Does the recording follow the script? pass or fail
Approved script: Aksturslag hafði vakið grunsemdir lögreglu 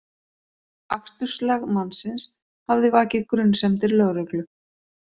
fail